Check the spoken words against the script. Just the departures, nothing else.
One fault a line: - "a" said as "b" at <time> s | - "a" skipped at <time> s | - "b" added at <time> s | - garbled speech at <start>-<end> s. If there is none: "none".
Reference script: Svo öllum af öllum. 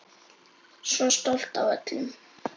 - "öllum" said as "stolt" at 1.2 s